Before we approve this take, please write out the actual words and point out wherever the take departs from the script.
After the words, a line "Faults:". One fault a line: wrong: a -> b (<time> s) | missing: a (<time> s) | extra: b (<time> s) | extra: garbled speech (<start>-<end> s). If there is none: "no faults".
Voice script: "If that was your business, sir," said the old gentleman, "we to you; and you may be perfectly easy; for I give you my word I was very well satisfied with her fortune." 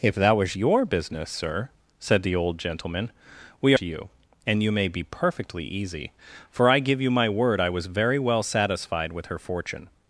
"If that was your business, sir," said the old gentleman, "we to you; and you may be perfectly easy; for I give you my word I was very well satisfied with her fortune."
Faults:
no faults